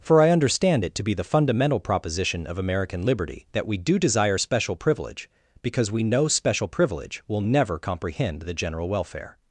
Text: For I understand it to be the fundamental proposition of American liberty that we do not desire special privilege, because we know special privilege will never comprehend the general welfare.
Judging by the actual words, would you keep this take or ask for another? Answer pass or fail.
fail